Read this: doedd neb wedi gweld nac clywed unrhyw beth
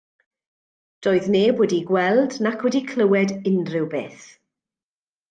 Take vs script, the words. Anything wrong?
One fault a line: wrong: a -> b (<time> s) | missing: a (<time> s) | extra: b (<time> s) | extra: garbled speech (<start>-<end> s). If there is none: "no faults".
extra: wedi (2.6 s)